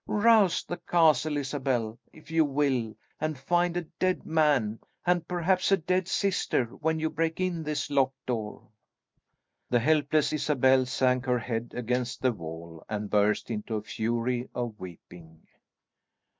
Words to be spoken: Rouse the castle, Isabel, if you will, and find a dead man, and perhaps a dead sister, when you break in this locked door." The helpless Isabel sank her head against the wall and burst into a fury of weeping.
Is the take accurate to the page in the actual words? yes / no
yes